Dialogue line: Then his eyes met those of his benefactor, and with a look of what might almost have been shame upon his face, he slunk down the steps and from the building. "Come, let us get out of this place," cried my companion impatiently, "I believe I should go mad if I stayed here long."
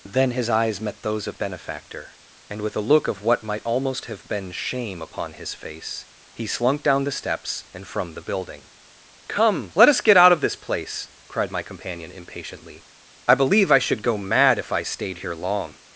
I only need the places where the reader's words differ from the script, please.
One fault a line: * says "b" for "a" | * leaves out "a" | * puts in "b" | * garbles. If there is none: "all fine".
* leaves out "his"